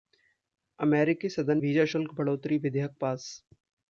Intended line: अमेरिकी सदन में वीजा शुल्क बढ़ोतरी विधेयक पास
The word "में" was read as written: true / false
false